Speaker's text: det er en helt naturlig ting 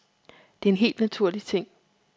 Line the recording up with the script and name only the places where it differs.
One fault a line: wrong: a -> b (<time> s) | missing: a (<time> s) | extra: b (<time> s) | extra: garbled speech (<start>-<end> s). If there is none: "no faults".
no faults